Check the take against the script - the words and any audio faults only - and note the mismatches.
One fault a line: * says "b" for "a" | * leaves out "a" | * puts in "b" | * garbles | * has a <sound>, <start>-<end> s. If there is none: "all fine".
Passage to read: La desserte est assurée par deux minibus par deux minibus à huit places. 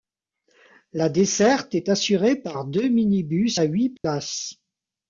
* leaves out "par deux minibus"
* has a dropout, 4.0-4.0 s